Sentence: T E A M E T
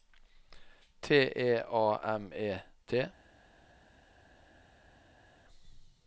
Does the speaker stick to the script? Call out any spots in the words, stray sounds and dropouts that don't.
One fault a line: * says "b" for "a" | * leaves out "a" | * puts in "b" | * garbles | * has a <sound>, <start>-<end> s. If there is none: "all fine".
all fine